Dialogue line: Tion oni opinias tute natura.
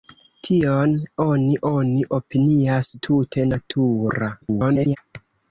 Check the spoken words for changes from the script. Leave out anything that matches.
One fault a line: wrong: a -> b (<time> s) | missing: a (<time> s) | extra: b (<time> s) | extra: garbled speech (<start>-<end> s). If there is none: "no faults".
extra: oni (1.7 s)
extra: garbled speech (4.4-5.0 s)